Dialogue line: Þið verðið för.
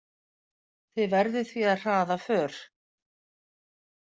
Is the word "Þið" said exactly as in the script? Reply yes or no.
yes